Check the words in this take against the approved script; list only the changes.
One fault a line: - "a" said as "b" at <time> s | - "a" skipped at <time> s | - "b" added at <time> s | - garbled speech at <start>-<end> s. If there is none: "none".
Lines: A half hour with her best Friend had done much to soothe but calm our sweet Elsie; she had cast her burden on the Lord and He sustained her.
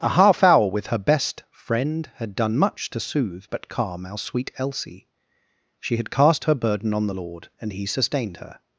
none